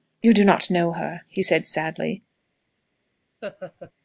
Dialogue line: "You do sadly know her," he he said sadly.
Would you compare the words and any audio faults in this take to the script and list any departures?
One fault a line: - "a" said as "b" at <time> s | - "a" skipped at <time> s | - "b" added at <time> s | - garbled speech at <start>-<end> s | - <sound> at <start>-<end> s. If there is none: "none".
- "sadly" said as "not" at 0.4 s
- "he" skipped at 1.4 s
- laugh at 3.4-3.9 s